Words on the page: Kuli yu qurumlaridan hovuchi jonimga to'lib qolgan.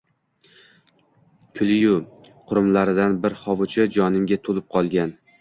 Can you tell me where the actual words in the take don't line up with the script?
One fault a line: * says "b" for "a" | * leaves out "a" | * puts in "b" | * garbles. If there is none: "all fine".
* puts in "bir"